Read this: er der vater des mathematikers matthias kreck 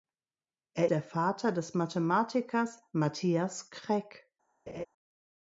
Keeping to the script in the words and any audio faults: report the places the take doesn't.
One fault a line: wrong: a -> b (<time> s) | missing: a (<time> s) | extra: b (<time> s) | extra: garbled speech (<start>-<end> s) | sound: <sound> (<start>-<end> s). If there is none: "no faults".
sound: laugh (4.7-4.9 s)